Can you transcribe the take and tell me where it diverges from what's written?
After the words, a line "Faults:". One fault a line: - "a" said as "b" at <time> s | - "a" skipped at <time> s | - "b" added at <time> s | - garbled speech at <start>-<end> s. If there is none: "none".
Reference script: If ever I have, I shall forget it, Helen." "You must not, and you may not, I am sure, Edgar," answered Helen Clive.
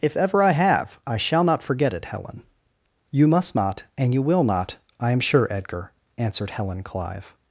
If ever I have, I shall not forget it, Helen." "You must not, and you will not, I am sure, Edgar," answered Helen Clive.
Faults:
- "not" added at 1.4 s
- "may" said as "will" at 4.2 s